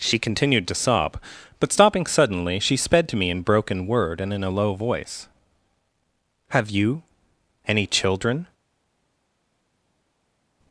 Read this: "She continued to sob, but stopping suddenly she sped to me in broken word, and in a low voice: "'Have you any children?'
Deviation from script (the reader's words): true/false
false